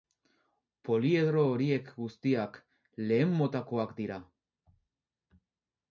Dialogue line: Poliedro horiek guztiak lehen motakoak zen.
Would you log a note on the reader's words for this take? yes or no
yes